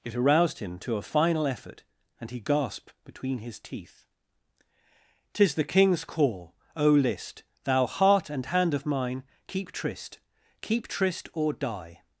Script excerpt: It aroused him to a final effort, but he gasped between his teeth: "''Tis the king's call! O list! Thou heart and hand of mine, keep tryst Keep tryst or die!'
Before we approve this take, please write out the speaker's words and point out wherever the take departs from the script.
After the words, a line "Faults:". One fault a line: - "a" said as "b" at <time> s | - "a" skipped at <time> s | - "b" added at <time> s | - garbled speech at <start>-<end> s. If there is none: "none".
It aroused him to a final effort, and he gasped between his teeth: "''Tis the king's call! O list! Thou heart and hand of mine, keep tryst Keep tryst or die!'
Faults:
- "but" said as "and" at 2.2 s